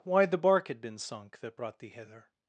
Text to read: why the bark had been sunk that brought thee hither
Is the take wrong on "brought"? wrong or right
right